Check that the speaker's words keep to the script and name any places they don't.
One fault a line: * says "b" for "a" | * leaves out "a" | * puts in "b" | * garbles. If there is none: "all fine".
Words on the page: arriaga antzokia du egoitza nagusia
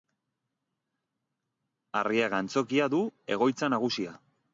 all fine